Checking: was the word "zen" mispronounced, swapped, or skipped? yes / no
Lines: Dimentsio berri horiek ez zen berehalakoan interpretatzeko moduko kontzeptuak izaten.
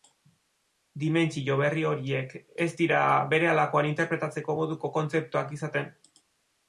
yes